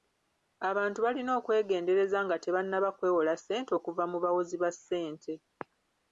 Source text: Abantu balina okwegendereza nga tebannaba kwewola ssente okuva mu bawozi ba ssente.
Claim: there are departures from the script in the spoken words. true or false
false